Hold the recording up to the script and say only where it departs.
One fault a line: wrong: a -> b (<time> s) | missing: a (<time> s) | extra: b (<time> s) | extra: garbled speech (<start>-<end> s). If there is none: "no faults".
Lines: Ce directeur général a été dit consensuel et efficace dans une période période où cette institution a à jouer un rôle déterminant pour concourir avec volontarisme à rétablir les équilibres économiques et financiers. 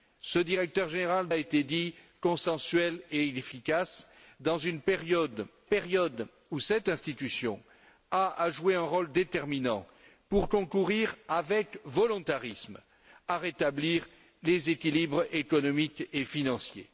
no faults